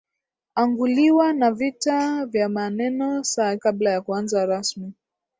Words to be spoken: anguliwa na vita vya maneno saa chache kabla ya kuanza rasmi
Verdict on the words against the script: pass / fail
fail